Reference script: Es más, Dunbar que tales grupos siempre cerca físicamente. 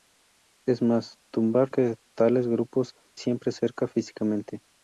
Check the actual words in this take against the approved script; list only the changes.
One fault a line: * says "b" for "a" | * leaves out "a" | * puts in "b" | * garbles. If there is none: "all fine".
all fine